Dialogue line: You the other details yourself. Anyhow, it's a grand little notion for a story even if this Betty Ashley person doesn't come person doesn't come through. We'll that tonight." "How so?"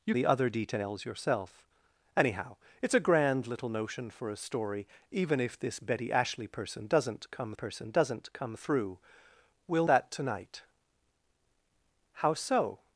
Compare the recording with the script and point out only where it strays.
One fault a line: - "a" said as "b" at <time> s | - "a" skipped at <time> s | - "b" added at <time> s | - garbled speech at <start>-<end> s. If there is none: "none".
none